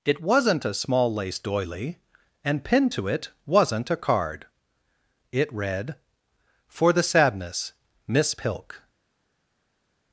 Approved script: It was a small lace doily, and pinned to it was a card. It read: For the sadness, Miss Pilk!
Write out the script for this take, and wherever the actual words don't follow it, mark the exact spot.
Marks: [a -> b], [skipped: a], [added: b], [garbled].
It [was -> wasn't] a small lace doily, and pinned to it [was -> wasn't] a card. It read: For the sadness, Miss Pilk!